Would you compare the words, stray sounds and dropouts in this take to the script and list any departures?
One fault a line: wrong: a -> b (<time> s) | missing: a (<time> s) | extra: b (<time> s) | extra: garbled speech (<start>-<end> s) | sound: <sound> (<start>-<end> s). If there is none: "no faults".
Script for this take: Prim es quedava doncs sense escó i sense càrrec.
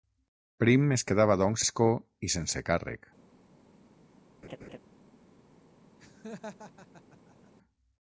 missing: sense (1.6 s)
sound: laugh (4.4-4.8 s)
sound: laugh (6.0-7.5 s)